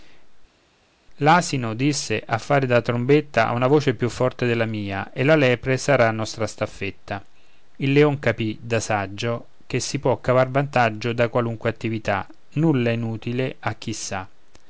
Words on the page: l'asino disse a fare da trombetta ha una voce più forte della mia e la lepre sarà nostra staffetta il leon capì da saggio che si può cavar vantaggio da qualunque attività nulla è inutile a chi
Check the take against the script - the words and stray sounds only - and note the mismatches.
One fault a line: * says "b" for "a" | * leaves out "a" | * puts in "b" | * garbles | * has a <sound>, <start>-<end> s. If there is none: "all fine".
all fine